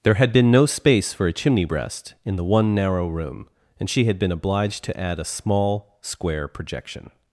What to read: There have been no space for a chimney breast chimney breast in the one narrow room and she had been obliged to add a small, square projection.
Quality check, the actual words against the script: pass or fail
fail